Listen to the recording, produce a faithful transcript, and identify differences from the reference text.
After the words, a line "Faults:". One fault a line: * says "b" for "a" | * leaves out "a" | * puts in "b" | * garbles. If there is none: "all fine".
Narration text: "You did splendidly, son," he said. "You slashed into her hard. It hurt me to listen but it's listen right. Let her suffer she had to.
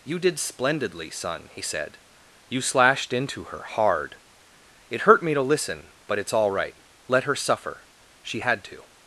"You did splendidly, son," he said. "You slashed into her hard. It hurt me to listen but it's all right. Let her suffer she had to.
Faults:
* says "all" for "listen"